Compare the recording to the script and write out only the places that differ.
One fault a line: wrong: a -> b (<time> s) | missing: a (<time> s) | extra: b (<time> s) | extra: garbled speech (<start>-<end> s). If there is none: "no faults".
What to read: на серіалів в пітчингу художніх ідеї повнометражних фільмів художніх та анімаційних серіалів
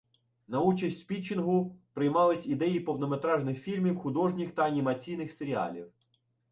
wrong: серіалів -> участь (0.6 s)
wrong: художніх -> приймались (1.9 s)